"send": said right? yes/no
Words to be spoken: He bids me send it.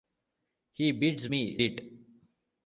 no